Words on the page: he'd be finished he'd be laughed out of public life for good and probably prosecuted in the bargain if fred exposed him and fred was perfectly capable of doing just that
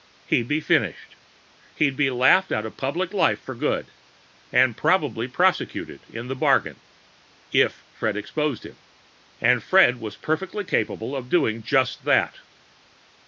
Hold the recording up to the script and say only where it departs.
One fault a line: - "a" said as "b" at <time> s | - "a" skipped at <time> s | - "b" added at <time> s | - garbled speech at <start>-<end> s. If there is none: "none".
none